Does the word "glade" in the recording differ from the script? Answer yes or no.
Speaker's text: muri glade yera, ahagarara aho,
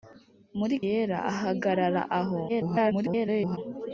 yes